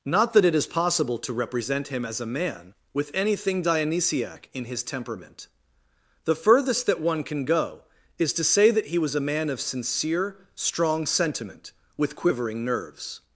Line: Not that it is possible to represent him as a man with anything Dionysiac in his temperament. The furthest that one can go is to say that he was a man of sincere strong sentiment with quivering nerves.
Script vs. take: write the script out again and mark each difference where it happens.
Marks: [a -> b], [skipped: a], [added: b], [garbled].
Not that it is possible to represent him as a man with anything Dionysiac in his temperament. The furthest that one can go is to say that he was a man of sincere strong sentiment with quivering nerves.